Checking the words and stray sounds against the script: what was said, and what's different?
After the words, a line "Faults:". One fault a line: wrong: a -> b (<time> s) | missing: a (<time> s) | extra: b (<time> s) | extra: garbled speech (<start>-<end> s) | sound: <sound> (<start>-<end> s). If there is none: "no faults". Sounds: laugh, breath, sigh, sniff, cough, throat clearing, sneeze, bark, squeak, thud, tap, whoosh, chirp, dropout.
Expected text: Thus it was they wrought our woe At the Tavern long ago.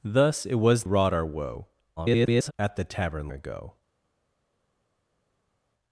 Thus it was wrought our woe [garbled] At the Tavern ago.
Faults:
missing: they (0.8 s)
extra: garbled speech (2.0-2.5 s)
missing: long (3.3 s)